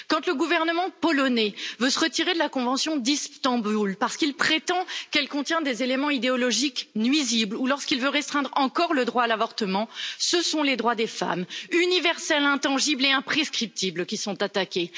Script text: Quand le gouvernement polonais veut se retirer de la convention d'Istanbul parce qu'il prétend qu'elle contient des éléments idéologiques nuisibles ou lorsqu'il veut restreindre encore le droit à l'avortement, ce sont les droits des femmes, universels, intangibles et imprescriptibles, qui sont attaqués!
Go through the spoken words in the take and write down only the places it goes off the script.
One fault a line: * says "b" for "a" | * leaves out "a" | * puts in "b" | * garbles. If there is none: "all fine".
all fine